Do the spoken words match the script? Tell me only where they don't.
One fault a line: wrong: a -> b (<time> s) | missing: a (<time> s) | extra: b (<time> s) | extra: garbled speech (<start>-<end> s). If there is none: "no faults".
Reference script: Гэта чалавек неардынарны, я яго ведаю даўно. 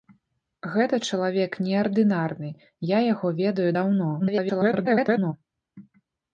extra: garbled speech (4.2-5.3 s)